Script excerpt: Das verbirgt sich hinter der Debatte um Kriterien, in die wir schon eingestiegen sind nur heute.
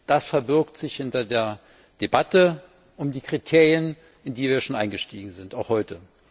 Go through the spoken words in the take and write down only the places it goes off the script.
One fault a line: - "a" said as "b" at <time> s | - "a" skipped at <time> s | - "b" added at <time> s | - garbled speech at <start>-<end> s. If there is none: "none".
- "die" added at 3.1 s
- "nur" said as "auch" at 5.5 s